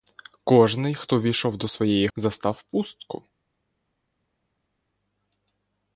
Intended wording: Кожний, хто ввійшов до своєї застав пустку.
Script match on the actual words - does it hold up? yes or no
yes